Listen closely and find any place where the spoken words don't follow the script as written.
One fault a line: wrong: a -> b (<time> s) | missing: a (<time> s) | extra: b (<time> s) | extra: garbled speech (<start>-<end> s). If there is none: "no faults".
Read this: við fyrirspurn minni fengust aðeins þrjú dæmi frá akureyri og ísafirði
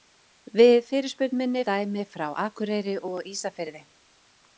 missing: fengust aðeins þrjú (1.6 s)